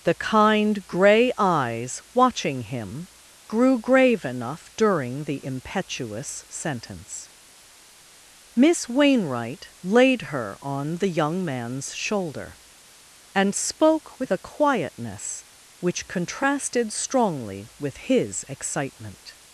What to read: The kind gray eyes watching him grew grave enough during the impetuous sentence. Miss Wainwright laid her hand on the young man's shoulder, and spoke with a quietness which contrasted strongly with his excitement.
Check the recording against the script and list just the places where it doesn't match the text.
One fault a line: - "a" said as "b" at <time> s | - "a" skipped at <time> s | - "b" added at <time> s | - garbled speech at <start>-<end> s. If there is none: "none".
- "hand" skipped at 10.6 s